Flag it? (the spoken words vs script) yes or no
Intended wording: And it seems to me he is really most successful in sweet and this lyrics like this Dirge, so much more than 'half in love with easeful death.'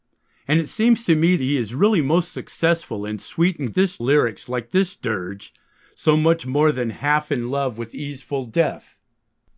no